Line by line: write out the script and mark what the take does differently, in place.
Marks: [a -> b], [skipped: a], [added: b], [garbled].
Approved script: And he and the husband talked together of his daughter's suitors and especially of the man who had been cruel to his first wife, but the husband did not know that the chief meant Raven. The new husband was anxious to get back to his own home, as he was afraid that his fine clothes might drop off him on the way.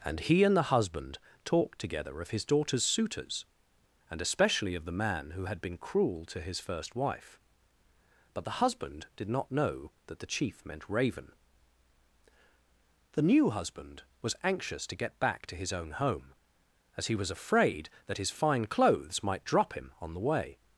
And he and the husband talked together of his daughter's suitors and especially of the man who had been cruel to his first wife, but the husband did not know that the chief meant Raven. The new husband was anxious to get back to his own home, as he was afraid that his fine clothes might drop [skipped: off] him on the way.